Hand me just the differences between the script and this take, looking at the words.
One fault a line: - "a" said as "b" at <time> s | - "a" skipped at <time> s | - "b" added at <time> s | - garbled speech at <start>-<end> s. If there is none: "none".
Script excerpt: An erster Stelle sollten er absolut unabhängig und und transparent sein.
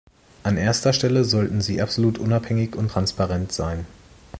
- "er" said as "sie" at 1.6 s
- "und" skipped at 2.9 s